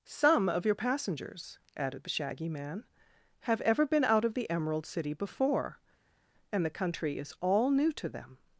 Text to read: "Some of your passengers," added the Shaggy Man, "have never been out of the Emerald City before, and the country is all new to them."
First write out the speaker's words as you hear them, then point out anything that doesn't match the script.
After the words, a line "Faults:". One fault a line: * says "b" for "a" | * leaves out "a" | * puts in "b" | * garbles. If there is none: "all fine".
"Some of your passengers," added the Shaggy Man, "have ever been out of the Emerald City before, and the country is all new to them."
Faults:
* says "ever" for "never"